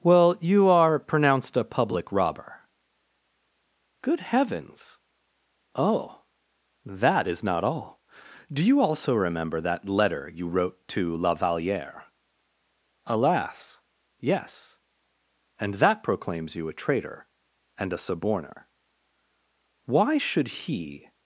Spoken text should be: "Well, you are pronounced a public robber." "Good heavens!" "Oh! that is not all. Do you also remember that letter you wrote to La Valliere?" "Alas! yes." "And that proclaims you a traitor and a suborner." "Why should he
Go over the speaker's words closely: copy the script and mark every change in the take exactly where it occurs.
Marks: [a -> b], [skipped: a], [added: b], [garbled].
"Well, you are pronounced a public robber." "Good heavens!" "Oh! that is not all. Do you also remember that letter you wrote to La Valliere?" "Alas! yes." "And that proclaims you a traitor and a suborner." "Why should he